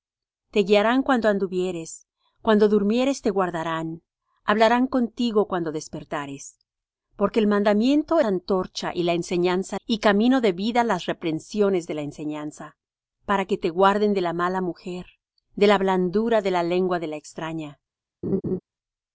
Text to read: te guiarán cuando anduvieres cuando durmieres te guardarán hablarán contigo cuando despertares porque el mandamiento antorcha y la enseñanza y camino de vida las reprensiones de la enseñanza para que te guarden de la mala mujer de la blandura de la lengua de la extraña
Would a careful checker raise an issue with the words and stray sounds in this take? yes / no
yes